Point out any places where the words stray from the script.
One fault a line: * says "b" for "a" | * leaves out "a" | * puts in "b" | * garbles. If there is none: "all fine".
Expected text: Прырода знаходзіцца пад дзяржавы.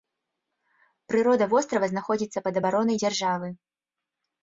* puts in "вострава"
* puts in "абаронай"